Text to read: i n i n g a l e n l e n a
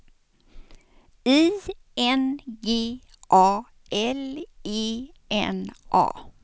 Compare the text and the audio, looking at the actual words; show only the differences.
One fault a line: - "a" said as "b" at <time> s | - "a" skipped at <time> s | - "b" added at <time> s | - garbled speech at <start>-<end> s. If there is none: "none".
- "i n" skipped at 2.4 s
- "l e n" skipped at 5.7 s